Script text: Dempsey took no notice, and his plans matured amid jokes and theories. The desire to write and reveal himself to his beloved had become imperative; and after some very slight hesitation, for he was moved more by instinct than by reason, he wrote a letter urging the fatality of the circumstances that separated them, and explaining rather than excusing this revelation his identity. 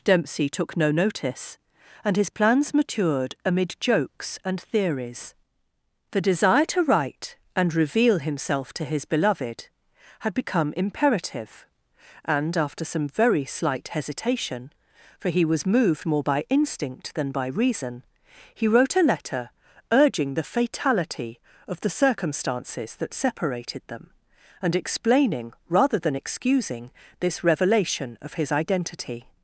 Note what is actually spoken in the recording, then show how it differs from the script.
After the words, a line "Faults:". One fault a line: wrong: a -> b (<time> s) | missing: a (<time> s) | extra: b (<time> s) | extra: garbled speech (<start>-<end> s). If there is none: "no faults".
Dempsey took no notice, and his plans matured amid jokes and theories. The desire to write and reveal himself to his beloved had become imperative; and after some very slight hesitation, for he was moved more by instinct than by reason, he wrote a letter urging the fatality of the circumstances that separated them, and explaining rather than excusing this revelation of his identity.
Faults:
extra: of (28.2 s)